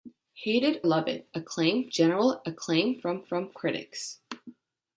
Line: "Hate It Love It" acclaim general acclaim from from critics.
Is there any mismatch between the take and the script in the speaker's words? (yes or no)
no